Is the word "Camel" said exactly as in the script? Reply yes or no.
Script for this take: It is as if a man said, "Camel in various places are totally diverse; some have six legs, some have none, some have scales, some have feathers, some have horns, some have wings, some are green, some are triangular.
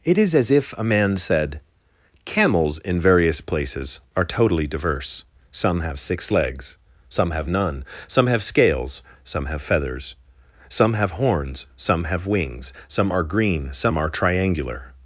no